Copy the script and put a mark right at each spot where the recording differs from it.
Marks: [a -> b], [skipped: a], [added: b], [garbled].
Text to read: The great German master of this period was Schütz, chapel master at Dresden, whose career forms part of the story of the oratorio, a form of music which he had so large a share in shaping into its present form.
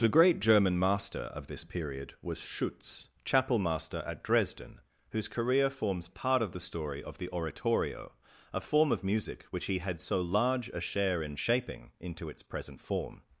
The great German master of this period was Schütz, chapel master at Dresden, whose career forms part of the story of the oratorio, a form of music which he had so large a share in shaping into its present form.